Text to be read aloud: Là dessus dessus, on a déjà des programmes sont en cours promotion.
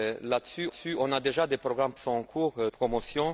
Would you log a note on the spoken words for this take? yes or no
no